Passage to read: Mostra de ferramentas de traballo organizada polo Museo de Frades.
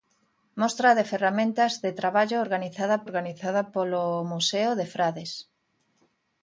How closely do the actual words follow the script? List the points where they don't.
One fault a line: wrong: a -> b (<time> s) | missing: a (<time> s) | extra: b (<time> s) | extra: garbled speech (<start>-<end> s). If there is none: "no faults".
extra: organizada (3.1 s)